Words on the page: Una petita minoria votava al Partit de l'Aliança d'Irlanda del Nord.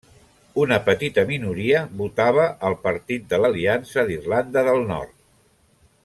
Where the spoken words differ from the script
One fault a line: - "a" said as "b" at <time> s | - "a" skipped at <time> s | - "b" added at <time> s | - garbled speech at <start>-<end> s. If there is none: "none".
none